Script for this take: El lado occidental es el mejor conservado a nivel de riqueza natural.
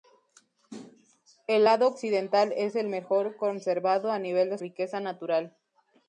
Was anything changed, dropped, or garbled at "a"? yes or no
no